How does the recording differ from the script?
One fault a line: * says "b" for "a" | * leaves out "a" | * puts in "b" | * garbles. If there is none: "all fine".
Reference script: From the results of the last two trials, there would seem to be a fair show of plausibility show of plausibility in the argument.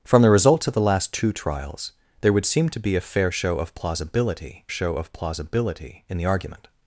all fine